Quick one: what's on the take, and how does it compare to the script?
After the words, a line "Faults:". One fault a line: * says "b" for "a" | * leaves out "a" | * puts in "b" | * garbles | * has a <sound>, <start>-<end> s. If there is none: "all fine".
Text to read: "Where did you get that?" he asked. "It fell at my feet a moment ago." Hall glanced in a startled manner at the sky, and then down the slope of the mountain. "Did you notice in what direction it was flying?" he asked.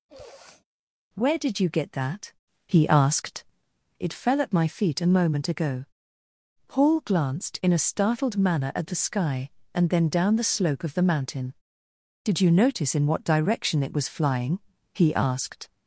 "Where did you get that?" he asked. "It fell at my feet a moment ago." Paul glanced in a startled manner at the sky, and then down the slope of the mountain. "Did you notice in what direction it was flying?" he asked.
Faults:
* has a sniff, 0.1-0.6 s
* says "Paul" for "Hall"